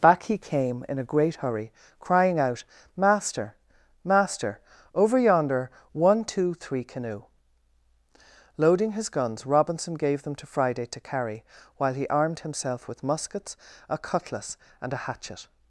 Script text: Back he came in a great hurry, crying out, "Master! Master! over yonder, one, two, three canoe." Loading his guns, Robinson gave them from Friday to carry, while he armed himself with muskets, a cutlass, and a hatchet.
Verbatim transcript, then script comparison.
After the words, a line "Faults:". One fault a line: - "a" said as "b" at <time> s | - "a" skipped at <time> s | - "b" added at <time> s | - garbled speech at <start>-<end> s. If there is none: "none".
Back he came in a great hurry, crying out, "Master! Master! over yonder, one, two, three canoe." Loading his guns, Robinson gave them to Friday to carry, while he armed himself with muskets, a cutlass, and a hatchet.
Faults:
- "from" said as "to" at 10.3 s